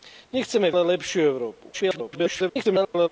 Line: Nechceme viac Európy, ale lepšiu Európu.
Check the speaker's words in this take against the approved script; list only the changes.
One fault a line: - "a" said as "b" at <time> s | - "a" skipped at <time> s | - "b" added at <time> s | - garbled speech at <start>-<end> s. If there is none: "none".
- "viac Európy" skipped at 0.7 s
- garbled speech at 1.7-3.1 s